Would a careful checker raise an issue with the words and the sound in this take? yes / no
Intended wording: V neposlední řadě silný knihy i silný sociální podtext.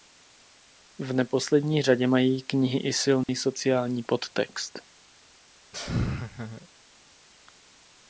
yes